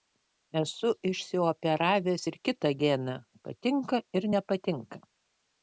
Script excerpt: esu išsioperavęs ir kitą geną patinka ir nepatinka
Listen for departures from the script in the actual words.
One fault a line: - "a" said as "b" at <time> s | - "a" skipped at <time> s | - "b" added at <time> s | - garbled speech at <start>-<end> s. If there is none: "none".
none